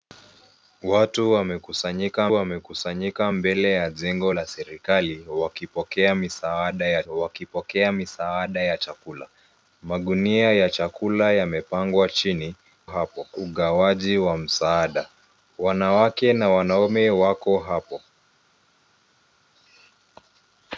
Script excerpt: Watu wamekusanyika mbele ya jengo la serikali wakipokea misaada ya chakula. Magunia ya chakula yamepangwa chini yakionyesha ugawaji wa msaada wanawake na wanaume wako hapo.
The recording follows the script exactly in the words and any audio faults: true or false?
false